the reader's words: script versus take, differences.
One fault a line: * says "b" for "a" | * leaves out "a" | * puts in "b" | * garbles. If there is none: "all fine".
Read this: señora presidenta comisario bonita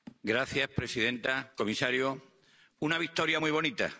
* puts in "una victoria muy"